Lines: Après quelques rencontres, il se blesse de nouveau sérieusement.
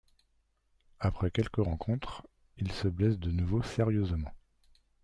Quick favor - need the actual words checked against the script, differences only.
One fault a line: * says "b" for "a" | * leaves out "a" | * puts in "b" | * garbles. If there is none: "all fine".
all fine